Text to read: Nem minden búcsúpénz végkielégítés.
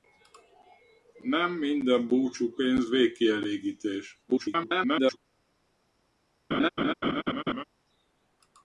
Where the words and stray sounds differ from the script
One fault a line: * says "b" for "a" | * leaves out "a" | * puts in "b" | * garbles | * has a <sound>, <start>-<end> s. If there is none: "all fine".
* garbles
* has a laugh, 6.5-7.6 s